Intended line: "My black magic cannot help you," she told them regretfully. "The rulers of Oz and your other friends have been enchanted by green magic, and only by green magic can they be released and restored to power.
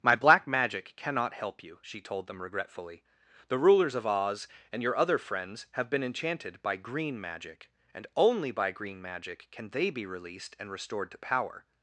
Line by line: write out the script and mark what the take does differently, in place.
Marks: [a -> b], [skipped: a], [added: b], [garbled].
"My black magic cannot help you," she told them regretfully. "The rulers of Oz and your other friends have been enchanted by green magic, and only by green magic can they be released and restored to power.